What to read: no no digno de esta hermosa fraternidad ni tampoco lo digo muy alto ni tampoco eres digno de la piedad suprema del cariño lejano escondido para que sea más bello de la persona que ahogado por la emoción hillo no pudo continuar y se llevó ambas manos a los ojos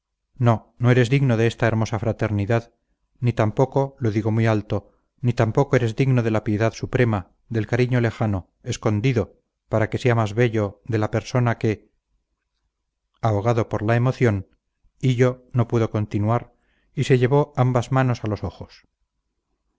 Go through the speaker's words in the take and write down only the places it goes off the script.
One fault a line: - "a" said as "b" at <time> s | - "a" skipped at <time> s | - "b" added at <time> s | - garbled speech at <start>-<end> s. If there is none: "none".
- "eres" added at 0.9 s